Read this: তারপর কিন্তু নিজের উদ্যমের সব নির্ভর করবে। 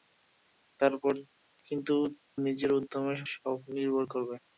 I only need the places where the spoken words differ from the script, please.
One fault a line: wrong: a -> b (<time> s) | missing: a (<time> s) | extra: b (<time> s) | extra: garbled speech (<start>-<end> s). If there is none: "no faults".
no faults